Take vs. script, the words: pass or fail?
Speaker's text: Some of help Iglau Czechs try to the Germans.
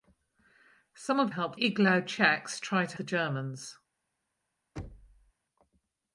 pass